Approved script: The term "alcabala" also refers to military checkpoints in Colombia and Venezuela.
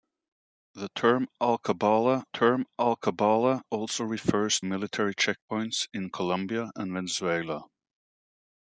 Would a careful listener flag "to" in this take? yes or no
yes